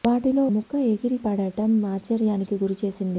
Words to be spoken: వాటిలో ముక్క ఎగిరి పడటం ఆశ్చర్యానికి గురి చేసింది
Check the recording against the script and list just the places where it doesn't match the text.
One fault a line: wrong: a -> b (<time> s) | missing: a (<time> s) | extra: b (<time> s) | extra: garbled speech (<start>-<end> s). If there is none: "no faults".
no faults